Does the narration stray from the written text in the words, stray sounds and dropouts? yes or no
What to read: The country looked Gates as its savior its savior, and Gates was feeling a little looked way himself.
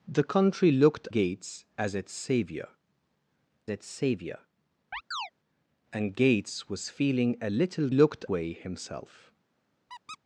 yes